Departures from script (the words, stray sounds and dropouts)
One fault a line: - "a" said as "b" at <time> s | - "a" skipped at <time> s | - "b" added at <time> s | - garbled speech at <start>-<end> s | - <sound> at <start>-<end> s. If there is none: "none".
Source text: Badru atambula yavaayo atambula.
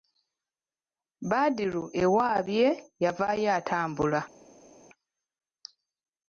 - "atambula" said as "ewaabye" at 2.0 s